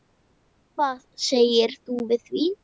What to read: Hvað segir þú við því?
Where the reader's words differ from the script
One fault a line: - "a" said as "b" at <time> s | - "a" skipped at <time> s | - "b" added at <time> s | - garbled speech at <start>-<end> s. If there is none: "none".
none